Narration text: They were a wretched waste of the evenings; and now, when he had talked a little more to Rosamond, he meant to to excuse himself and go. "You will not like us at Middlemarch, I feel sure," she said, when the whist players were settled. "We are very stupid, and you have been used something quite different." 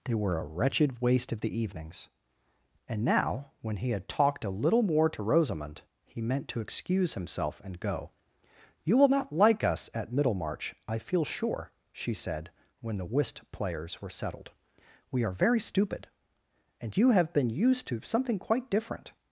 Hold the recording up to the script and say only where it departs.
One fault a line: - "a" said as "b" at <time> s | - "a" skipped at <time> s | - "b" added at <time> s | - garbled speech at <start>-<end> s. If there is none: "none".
- "to" skipped at 6.6 s
- "to" added at 17.9 s